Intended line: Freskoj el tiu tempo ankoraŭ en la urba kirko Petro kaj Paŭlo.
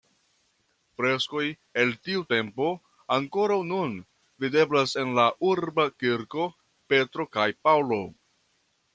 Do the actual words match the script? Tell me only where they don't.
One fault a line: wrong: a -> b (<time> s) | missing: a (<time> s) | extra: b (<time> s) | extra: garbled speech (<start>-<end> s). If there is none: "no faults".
extra: nun videblas (3.7 s)